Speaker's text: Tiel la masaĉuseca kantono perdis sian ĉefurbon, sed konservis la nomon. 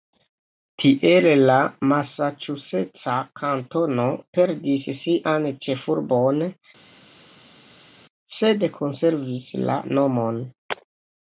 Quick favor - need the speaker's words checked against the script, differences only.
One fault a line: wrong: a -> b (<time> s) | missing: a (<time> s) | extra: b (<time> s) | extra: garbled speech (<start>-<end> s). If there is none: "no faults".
no faults